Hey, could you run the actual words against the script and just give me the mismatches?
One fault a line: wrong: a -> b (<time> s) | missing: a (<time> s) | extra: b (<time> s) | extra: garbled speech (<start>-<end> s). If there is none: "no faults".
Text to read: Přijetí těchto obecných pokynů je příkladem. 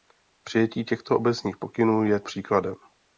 no faults